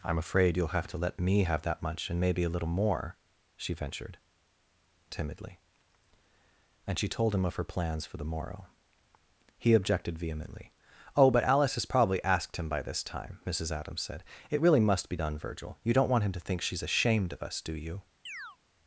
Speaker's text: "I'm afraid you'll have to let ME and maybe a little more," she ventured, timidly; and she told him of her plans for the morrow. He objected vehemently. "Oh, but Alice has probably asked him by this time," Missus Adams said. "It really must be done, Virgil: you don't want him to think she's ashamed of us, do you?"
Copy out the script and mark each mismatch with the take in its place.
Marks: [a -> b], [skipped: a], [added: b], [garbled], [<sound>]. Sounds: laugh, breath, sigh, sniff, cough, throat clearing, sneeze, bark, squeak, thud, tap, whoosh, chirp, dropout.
"I'm afraid you'll have to let ME [added: have that much] and maybe a little more," she ventured, timidly; and she told him of her plans for the morrow. He objected vehemently. "Oh, but Alice has probably asked him by this time," Missus Adams said. "It really must be done, Virgil: you don't want him to think she's ashamed of us, do you?" [chirp]